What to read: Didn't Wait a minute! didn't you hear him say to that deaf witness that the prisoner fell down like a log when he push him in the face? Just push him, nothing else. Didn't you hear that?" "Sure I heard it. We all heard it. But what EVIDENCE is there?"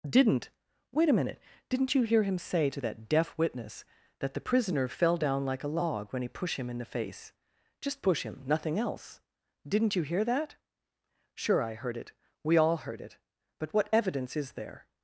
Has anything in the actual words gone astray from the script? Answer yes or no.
yes